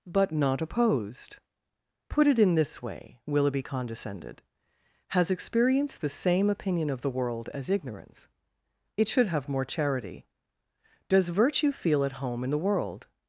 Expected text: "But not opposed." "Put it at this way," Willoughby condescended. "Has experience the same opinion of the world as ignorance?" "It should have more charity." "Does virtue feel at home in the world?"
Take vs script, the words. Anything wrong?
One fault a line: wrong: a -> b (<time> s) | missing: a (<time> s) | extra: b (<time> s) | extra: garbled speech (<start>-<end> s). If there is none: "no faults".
wrong: at -> in (2.4 s)